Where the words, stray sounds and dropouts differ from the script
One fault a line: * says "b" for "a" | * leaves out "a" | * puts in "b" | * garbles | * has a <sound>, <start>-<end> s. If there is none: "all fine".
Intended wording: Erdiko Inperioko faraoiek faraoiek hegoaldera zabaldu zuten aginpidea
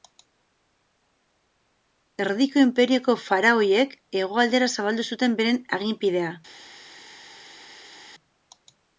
* leaves out "faraoiek"
* puts in "beren"